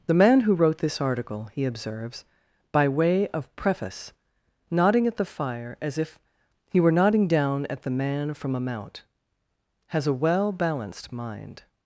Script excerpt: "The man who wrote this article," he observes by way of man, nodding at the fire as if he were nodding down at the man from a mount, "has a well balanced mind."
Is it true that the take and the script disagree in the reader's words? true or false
true